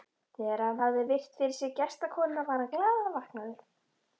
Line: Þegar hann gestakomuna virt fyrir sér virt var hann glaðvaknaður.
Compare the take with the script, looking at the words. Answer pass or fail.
fail